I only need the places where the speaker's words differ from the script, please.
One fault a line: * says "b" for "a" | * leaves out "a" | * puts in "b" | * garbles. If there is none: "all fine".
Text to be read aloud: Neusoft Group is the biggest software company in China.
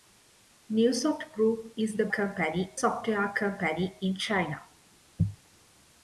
* says "company" for "biggest"